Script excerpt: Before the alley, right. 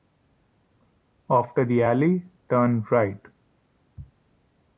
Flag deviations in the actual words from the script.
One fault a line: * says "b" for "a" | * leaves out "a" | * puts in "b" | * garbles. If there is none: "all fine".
* says "After" for "Before"
* puts in "turn"